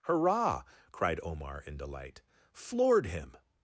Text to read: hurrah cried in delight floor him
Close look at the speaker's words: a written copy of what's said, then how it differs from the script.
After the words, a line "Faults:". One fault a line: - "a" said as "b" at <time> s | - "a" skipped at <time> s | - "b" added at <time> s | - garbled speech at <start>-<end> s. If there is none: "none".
hurrah cried omar in delight floored him
Faults:
- "omar" added at 1.2 s
- "floor" said as "floored" at 2.5 s